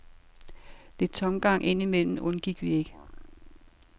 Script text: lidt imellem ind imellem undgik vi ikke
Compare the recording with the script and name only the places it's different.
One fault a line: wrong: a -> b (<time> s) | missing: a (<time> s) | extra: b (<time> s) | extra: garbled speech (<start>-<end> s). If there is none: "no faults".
wrong: imellem -> tomgang (1.1 s)